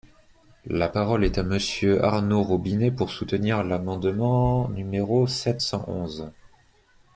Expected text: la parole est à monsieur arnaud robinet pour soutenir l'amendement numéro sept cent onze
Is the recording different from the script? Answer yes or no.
no